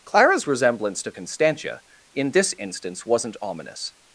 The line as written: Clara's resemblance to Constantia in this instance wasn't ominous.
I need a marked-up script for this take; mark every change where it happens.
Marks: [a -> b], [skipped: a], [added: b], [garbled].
Clara's resemblance to Constantia in this instance wasn't ominous.